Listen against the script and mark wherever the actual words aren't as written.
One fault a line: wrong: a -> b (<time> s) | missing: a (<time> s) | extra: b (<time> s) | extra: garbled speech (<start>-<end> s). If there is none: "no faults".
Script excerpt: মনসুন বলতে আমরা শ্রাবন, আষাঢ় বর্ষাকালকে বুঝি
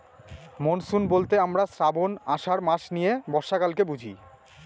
extra: মাস নিয়ে (2.6 s)